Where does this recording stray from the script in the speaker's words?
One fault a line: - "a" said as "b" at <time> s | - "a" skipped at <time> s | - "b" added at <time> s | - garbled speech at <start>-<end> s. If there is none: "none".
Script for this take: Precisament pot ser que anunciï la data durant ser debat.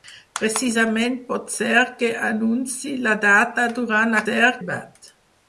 none